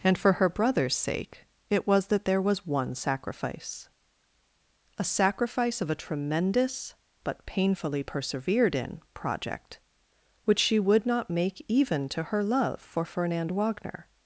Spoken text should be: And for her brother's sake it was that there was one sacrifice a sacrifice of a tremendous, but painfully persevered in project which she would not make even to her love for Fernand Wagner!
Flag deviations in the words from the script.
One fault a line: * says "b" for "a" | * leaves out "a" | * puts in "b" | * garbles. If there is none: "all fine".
all fine